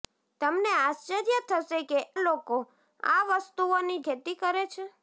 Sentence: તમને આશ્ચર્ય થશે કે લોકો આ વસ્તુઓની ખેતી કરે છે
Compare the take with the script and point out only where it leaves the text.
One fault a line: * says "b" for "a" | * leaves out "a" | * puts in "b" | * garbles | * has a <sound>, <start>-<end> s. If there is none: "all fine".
all fine